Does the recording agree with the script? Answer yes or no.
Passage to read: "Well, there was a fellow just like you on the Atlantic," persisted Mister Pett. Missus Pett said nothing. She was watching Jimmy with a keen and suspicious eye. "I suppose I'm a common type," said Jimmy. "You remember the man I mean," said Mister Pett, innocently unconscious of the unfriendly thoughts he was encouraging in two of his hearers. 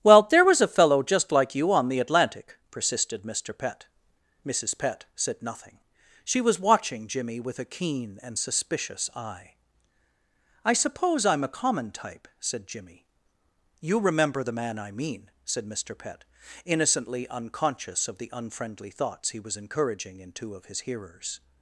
yes